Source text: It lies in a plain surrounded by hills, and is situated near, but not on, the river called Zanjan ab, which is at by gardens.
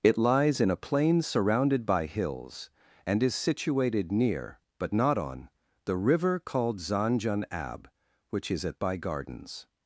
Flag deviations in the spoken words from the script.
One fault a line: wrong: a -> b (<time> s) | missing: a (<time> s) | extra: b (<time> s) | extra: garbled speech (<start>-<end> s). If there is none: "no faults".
no faults